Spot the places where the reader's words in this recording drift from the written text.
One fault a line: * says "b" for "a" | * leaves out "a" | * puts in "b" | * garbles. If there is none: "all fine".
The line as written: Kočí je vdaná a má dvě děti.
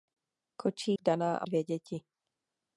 * leaves out "je"
* leaves out "má"